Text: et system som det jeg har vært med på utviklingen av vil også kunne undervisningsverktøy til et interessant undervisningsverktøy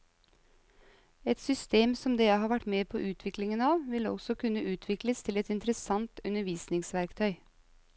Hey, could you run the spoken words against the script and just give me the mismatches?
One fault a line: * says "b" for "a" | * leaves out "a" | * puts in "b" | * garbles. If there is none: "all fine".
* says "utvikles" for "undervisningsverktøy"